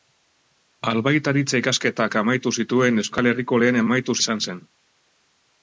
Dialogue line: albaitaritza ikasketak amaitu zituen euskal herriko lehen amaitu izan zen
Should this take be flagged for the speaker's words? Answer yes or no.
no